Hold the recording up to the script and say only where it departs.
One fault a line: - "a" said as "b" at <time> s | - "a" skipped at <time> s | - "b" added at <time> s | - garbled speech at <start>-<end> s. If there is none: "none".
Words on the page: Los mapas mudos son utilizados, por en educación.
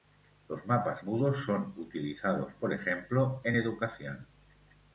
- "ejemplo" added at 2.7 s